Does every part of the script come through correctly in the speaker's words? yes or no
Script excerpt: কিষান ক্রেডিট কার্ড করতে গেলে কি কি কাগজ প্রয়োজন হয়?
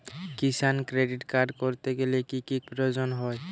no